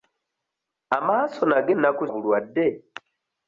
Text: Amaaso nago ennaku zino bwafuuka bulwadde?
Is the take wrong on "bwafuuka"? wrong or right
wrong